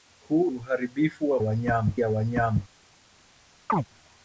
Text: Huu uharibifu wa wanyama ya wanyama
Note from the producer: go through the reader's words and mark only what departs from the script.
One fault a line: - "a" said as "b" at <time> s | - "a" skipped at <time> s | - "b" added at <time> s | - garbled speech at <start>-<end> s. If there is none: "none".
none